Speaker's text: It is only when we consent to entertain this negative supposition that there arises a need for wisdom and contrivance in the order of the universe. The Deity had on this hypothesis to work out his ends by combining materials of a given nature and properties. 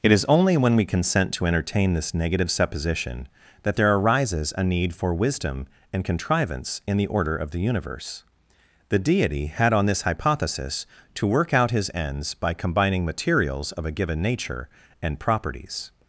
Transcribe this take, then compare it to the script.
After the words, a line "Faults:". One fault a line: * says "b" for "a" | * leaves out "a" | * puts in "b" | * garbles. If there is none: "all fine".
It is only when we consent to entertain this negative supposition that there arises a need for wisdom and contrivance in the order of the universe. The Deity had on this hypothesis to work out his ends by combining materials of a given nature and properties.
Faults:
all fine